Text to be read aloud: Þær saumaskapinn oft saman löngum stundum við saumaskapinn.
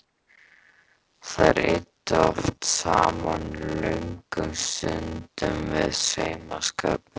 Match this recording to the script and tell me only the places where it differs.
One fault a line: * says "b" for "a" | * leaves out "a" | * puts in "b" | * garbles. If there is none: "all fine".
* says "eyddu" for "saumaskapinn"